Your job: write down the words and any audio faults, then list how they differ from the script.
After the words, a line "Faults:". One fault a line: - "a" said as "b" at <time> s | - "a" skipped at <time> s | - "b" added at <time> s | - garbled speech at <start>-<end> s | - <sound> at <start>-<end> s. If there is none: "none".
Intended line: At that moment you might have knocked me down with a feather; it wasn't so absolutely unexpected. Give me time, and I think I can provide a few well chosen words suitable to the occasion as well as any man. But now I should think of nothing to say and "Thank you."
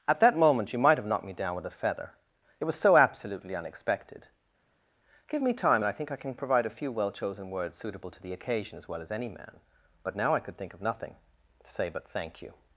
At that moment you might have knocked me down with a feather; it was so absolutely unexpected. Give me time, and I think I can provide a few well chosen words suitable to the occasion as well as any man. But now I could think of nothing to say but "Thank you."
Faults:
- "wasn't" said as "was" at 2.6 s
- "should" said as "could" at 10.4 s
- "and" said as "but" at 11.9 s